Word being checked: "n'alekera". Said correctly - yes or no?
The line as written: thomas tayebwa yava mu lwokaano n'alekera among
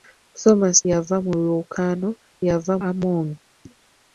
no